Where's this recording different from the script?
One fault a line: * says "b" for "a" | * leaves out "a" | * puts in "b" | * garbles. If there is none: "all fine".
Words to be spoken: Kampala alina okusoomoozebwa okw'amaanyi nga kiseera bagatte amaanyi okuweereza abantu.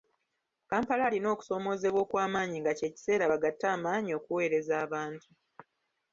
* puts in "kye"